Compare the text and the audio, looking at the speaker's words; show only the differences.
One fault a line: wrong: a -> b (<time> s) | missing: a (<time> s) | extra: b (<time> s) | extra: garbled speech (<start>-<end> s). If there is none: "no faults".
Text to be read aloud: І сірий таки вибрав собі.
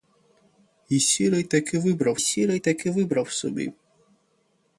extra: сірий таки вибрав (2.2 s)